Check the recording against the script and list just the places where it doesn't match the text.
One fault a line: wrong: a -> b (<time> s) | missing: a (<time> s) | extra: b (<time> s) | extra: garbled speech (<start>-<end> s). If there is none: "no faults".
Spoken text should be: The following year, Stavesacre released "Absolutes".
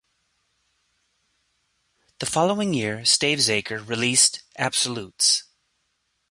no faults